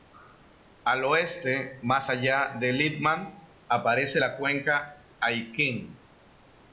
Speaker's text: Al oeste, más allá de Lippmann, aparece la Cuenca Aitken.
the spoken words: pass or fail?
pass